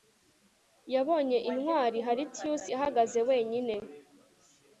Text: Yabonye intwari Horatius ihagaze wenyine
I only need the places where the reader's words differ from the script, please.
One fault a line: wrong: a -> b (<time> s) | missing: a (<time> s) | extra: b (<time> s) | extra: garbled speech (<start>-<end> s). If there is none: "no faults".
no faults